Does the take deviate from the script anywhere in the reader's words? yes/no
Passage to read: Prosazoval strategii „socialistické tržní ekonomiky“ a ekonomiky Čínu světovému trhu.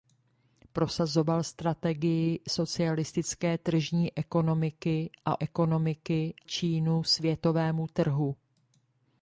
no